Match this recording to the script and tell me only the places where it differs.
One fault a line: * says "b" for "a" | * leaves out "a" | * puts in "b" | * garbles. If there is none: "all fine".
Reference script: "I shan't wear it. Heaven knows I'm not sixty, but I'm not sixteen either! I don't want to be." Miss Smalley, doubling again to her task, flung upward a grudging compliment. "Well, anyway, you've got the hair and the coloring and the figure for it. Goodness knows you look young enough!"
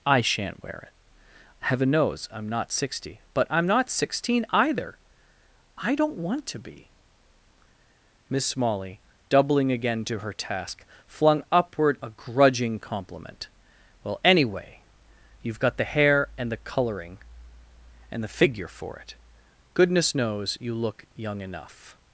all fine